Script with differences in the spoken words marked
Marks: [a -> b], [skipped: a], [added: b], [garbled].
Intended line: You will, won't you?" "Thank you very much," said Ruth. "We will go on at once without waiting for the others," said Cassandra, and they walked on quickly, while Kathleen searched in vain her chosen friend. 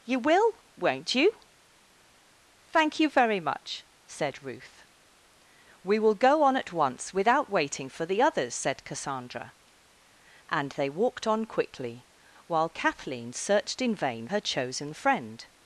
You will, won't you?" "Thank you very much," said Ruth. "We will go on at once without waiting for the others," said Cassandra, and they walked on quickly, while Kathleen searched in vain her chosen friend.